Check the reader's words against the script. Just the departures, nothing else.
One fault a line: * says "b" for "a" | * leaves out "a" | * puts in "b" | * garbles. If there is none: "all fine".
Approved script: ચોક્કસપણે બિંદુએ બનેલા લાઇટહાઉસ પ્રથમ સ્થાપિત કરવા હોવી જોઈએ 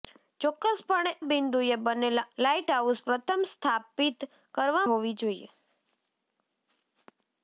all fine